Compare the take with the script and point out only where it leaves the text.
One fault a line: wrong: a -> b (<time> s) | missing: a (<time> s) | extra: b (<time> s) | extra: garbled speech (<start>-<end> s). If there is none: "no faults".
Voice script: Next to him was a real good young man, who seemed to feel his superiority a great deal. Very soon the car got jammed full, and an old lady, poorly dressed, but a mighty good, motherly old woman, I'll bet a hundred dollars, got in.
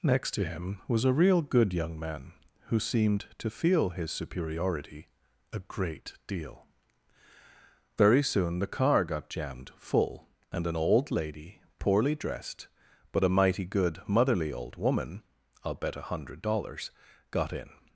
no faults